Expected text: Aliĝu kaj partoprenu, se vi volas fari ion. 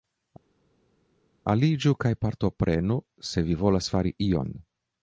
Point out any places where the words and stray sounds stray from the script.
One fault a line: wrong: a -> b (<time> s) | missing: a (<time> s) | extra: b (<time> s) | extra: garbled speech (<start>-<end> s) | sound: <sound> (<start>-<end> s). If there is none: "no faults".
no faults